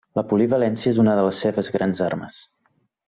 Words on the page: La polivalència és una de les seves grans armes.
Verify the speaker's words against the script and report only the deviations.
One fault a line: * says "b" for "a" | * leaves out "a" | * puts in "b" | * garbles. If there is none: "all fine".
all fine